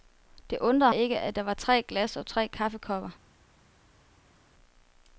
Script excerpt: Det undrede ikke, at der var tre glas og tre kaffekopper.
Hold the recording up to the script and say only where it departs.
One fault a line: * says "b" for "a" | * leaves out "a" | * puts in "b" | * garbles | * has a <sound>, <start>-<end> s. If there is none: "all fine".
all fine